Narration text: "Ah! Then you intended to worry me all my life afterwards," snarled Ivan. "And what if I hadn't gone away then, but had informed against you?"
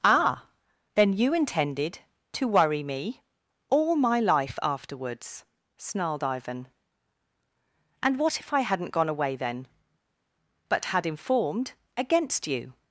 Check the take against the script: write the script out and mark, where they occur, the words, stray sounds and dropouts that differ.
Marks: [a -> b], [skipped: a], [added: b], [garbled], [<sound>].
"Ah! Then you intended to worry me all my life afterwards," snarled Ivan. "And what if I hadn't gone away then, but had informed against you?"